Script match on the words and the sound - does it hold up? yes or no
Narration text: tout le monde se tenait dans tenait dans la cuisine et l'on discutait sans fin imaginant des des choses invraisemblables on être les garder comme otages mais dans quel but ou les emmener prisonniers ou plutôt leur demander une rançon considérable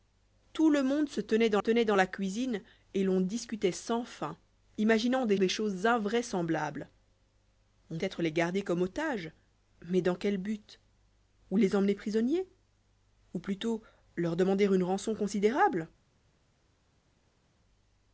yes